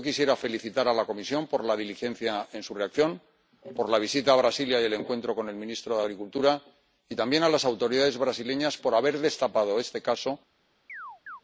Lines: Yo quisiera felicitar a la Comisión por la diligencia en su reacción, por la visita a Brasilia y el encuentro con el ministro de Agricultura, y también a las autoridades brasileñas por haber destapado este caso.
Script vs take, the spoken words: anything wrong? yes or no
no